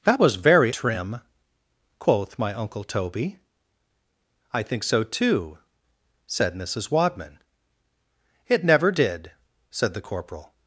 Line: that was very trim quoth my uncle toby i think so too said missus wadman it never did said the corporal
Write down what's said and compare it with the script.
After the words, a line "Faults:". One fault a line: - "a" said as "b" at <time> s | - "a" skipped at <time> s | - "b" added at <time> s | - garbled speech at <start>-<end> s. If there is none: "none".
that was very trim quoth my uncle toby i think so too said missus wadman it never did said the corporal
Faults:
none